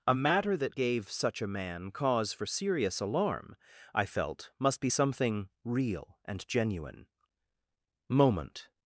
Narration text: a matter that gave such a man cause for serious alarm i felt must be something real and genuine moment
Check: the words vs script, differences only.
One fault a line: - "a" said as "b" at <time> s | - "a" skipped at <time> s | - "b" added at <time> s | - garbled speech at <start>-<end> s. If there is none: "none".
none